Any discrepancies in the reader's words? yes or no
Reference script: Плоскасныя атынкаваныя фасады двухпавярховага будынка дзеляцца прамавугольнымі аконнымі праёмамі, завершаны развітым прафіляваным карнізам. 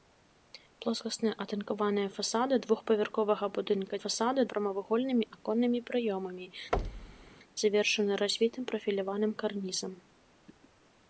yes